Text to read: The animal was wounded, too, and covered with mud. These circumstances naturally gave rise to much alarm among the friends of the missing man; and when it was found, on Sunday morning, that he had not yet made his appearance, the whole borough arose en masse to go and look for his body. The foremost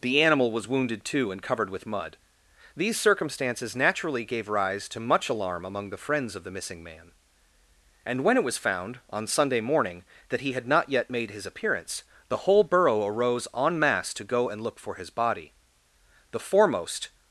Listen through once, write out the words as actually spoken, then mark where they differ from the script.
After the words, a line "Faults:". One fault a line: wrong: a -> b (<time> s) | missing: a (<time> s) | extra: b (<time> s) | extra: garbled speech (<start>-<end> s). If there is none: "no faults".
The animal was wounded, too, and covered with mud. These circumstances naturally gave rise to much alarm among the friends of the missing man; and when it was found, on Sunday morning, that he had not yet made his appearance, the whole borough arose en masse to go and look for his body. The foremost
Faults:
no faults